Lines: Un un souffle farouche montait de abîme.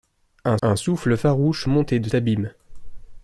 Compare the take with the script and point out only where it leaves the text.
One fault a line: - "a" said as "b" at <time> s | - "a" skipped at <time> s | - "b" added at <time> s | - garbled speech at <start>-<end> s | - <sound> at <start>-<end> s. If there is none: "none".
none